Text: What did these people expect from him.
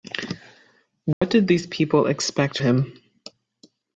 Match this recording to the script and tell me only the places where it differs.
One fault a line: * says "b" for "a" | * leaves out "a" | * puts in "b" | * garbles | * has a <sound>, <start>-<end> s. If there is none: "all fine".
* has a dropout, 1.1-1.2 s
* leaves out "from"